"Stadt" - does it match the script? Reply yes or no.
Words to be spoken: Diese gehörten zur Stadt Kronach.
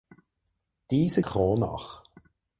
no